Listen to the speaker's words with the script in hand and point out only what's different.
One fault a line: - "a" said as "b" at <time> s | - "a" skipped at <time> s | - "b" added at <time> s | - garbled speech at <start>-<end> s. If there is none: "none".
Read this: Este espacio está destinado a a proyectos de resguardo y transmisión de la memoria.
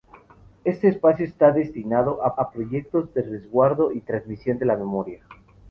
none